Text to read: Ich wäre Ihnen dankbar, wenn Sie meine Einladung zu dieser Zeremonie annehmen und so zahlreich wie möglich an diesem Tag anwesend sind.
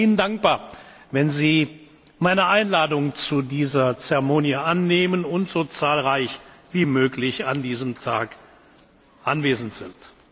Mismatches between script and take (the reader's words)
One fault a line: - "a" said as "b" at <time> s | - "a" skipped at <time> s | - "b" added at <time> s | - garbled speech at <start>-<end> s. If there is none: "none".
none